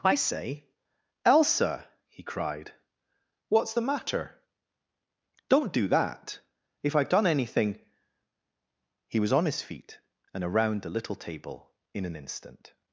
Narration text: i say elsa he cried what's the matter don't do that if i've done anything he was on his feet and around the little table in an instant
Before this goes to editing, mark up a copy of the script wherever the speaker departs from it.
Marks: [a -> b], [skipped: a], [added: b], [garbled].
i say elsa he cried what's the matter don't do that if i've done anything he was on his feet and around the little table in an instant